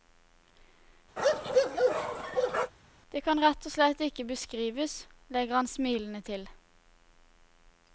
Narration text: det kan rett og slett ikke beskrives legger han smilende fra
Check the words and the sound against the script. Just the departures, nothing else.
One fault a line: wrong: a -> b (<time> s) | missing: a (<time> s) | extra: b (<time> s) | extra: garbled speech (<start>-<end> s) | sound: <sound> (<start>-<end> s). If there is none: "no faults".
sound: bark (1.2-2.7 s)
wrong: fra -> til (6.3 s)